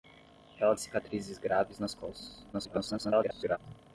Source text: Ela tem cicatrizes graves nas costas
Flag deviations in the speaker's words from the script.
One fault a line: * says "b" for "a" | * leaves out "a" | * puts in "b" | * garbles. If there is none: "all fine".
* leaves out "tem"
* garbles